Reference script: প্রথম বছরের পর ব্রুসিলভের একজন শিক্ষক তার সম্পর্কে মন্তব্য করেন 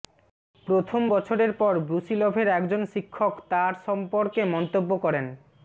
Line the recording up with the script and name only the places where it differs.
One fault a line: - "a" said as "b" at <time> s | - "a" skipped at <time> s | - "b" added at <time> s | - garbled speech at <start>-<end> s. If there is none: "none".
none